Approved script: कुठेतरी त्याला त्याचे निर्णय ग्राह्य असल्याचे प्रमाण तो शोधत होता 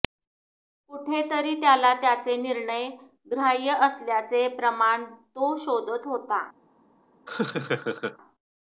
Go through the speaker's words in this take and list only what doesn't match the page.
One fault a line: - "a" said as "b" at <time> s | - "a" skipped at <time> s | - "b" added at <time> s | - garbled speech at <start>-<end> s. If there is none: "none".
none